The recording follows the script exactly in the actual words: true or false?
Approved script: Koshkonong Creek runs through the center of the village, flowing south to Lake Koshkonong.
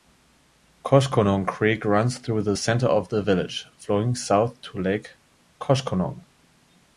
true